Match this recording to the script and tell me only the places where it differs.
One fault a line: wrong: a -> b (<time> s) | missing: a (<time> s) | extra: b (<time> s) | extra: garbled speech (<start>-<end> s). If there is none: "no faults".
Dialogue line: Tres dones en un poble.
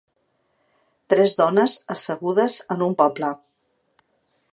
extra: assegudes (1.9 s)